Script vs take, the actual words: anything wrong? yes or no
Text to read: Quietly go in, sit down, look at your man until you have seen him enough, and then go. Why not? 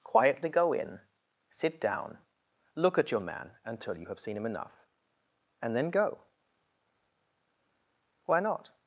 no